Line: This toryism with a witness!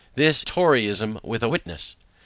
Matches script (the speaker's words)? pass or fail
pass